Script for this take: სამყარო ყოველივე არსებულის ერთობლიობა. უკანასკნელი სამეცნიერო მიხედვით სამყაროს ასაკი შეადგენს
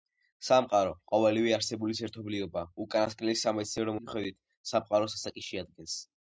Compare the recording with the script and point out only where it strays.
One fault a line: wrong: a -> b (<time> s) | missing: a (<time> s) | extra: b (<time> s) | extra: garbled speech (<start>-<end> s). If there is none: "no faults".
no faults